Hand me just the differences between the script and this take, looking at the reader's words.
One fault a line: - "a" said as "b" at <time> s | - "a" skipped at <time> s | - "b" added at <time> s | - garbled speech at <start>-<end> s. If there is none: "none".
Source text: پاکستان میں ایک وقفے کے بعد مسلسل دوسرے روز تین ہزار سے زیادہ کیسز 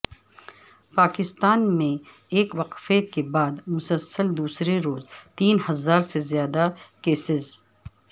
none